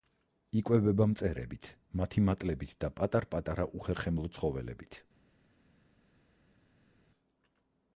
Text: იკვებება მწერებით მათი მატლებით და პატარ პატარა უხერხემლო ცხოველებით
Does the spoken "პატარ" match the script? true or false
true